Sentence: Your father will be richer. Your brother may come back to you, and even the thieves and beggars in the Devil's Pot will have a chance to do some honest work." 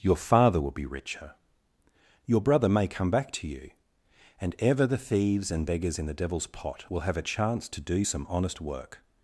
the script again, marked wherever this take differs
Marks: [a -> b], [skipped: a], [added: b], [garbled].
Your father will be richer. Your brother may come back to you, and [even -> ever] the thieves and beggars in the Devil's Pot will have a chance to do some honest work."